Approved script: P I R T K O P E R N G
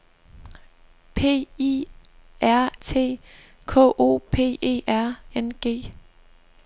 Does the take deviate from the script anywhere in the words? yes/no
no